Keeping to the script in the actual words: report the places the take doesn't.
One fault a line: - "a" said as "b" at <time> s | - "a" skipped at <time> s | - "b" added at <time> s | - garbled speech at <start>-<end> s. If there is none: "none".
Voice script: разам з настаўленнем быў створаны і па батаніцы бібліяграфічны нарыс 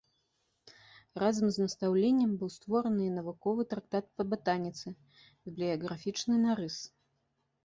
- "навуковы трактат" added at 3.2 s